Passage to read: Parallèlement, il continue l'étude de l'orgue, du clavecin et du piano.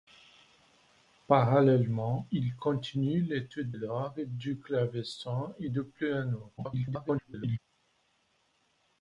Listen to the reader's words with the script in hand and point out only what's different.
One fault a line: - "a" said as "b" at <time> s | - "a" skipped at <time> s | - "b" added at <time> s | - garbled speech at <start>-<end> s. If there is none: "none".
- "de" skipped at 3.7 s
- garbled speech at 6.6-7.6 s